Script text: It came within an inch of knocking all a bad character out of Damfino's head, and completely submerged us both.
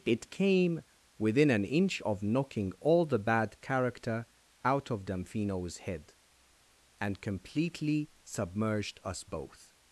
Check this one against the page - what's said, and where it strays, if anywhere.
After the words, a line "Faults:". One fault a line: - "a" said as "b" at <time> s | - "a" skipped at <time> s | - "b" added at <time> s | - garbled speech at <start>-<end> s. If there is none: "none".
It came within an inch of knocking all the bad character out of Damfino's head, and completely submerged us both.
Faults:
- "a" said as "the" at 3.1 s